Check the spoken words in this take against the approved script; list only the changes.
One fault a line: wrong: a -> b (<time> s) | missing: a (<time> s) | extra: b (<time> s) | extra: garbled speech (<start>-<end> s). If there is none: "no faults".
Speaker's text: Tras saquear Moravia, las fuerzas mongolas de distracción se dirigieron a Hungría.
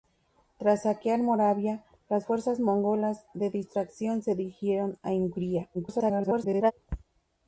extra: garbled speech (5.7-6.7 s)